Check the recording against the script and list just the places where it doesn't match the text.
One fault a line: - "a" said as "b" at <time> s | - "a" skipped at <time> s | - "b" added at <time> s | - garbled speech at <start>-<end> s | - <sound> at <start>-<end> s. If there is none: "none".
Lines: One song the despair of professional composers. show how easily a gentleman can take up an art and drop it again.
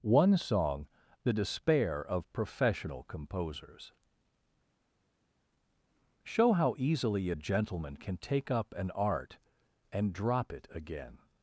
none